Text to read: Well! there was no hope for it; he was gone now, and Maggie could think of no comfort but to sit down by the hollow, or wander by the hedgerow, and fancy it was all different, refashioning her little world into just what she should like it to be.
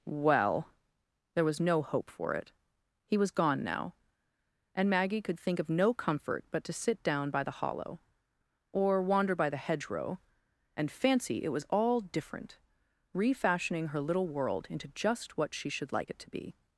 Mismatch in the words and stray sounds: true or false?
false